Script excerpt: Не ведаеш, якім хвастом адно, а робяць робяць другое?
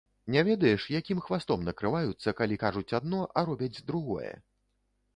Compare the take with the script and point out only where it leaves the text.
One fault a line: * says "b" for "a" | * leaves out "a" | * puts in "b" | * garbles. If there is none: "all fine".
* puts in "накрываюцца калі кажуць"
* leaves out "робяць"